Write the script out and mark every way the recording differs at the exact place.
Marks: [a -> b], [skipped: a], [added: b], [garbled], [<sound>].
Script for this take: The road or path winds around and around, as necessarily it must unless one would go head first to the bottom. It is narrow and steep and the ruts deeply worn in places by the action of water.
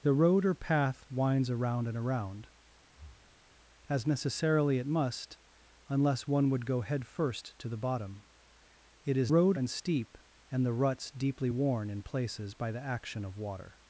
The road or path winds around and around, [breath] as necessarily it must unless one would go head first to the bottom. It is [narrow -> road] and steep and the ruts deeply worn in places by the action of water.